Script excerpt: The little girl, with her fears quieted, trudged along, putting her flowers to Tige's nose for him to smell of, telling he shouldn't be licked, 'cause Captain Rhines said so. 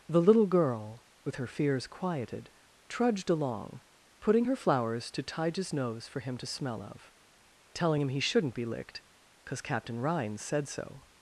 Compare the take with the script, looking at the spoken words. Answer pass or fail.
fail